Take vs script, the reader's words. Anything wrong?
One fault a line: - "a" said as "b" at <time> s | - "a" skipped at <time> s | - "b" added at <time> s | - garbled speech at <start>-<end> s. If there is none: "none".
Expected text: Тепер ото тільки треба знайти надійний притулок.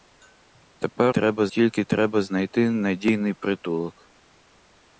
- "ото" said as "треба" at 1.1 s